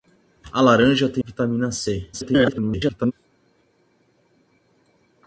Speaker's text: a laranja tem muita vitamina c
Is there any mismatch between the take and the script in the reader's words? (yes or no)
yes